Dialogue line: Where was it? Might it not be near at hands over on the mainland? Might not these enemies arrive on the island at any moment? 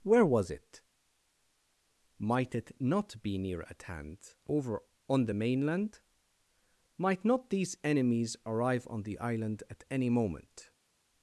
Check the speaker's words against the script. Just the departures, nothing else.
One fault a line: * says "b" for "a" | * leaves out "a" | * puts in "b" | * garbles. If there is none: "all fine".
* says "hand" for "hands"